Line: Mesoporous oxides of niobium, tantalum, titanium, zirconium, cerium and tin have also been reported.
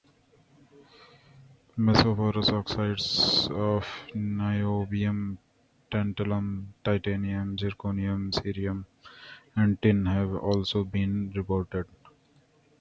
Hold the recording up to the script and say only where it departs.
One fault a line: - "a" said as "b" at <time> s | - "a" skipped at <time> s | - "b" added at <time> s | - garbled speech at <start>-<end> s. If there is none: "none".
none